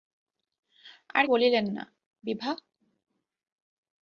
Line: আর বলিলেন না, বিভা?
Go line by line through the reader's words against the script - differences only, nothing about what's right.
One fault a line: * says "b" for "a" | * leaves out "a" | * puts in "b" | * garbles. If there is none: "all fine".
all fine